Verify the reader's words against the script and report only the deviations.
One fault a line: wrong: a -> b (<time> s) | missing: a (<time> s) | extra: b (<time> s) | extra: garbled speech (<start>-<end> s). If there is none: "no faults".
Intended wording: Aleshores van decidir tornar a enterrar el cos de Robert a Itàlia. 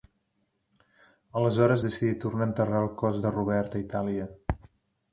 missing: van (1.8 s)